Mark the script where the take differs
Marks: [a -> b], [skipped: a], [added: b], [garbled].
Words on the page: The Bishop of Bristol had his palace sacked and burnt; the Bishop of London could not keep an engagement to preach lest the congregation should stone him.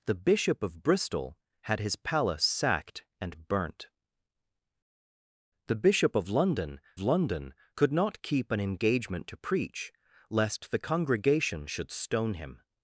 The Bishop of Bristol had his palace sacked and burnt; the Bishop of London [added: London] could not keep an engagement to preach lest the congregation should stone him.